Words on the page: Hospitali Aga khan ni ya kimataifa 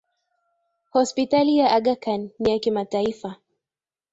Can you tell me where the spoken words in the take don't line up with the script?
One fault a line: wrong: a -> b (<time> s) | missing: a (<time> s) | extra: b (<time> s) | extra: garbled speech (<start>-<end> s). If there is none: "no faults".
extra: ya (1.6 s)